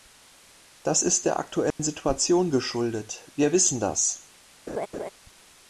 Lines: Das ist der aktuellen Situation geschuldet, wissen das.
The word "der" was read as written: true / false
true